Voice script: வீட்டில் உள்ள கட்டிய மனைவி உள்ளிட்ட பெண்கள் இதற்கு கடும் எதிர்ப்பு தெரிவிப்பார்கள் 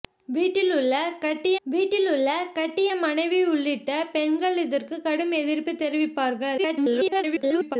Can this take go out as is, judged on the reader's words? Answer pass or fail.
fail